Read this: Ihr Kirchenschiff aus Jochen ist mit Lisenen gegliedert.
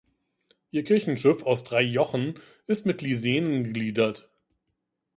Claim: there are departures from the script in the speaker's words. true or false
true